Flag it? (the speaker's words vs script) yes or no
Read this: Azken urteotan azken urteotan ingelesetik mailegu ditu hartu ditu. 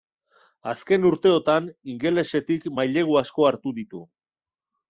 yes